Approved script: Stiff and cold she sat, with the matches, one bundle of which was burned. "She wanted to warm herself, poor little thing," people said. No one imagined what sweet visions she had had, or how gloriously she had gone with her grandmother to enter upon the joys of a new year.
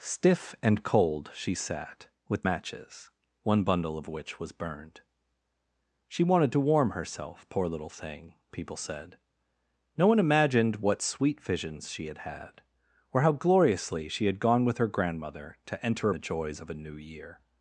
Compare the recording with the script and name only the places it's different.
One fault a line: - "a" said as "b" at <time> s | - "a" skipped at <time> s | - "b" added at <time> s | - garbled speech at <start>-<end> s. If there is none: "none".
- "the" skipped at 2.5 s
- "upon" skipped at 16.1 s